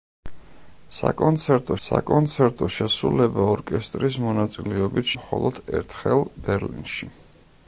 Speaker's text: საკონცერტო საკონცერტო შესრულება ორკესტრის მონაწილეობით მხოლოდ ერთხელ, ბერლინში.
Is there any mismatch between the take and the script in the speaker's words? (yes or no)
no